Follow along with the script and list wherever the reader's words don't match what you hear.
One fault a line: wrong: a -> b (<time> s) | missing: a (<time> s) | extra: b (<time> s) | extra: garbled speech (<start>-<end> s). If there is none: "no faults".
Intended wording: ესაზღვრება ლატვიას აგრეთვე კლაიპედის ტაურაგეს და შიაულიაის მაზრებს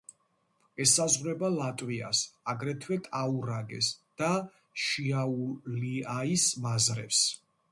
missing: კლაიპედის (3.0 s)